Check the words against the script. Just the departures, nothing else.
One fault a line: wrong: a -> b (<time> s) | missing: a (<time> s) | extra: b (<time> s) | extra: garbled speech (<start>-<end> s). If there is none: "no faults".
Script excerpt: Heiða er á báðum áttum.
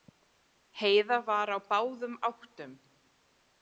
wrong: er -> var (1.3 s)